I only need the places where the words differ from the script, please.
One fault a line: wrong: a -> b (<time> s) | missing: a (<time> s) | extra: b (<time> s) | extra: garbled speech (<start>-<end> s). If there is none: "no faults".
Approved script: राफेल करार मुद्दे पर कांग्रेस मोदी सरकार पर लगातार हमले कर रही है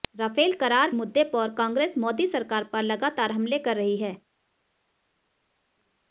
no faults